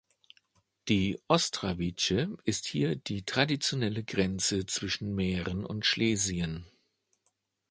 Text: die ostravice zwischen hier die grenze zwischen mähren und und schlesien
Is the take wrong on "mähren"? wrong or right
right